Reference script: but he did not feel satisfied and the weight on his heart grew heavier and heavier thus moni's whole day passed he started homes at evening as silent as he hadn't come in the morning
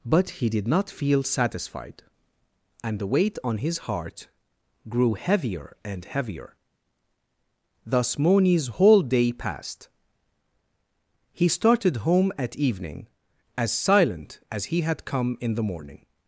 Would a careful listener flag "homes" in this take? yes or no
yes